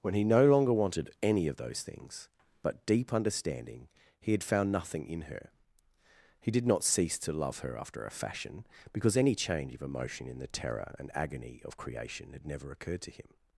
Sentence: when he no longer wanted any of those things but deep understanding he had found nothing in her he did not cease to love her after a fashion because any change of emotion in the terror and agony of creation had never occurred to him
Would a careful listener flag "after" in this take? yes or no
no